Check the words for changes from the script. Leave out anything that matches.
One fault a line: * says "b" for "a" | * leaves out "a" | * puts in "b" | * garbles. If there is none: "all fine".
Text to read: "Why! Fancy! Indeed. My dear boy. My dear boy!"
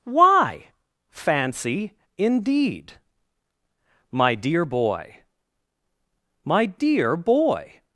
all fine